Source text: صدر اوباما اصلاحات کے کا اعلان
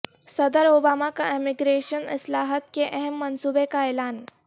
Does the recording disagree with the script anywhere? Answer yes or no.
yes